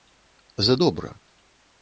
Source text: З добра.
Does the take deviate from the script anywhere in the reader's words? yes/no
no